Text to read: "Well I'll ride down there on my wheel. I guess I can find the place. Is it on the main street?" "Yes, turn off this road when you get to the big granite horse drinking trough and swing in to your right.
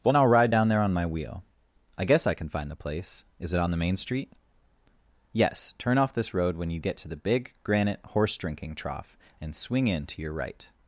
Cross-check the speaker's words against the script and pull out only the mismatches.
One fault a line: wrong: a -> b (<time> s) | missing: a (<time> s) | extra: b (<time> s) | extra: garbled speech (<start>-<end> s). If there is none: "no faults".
no faults